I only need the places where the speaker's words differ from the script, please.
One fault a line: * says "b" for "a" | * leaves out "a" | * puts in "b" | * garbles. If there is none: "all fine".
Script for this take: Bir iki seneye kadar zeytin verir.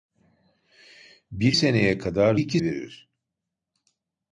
* leaves out "iki"
* says "iki" for "zeytin"